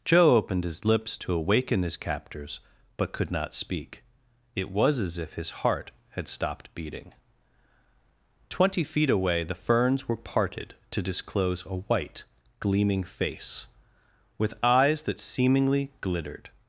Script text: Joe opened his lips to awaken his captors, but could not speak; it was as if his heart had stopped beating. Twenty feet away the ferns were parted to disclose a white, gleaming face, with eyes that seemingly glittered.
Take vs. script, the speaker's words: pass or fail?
pass